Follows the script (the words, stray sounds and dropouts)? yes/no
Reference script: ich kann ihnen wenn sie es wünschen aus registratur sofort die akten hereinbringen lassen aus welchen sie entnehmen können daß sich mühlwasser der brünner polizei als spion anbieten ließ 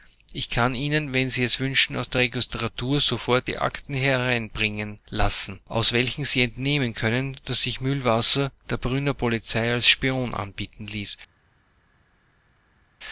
no